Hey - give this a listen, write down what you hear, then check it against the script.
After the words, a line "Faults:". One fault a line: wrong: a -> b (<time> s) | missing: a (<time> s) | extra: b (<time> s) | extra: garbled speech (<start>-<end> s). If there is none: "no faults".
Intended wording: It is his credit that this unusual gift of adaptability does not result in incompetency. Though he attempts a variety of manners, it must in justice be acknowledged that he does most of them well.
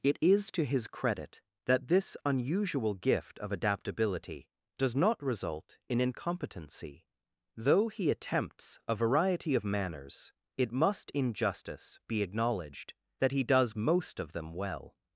It is to his credit that this unusual gift of adaptability does not result in incompetency. Though he attempts a variety of manners, it must in justice be acknowledged that he does most of them well.
Faults:
extra: to (0.5 s)